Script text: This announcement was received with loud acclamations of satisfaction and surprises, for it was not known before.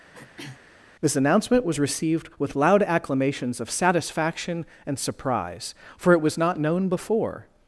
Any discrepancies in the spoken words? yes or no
yes